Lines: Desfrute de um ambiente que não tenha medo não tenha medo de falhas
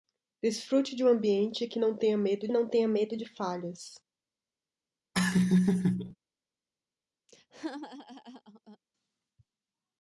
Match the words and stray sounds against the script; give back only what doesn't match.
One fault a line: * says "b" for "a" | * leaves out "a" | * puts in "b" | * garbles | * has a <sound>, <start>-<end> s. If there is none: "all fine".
* has a laugh, 5.1-6.2 s
* has a laugh, 7.3-8.8 s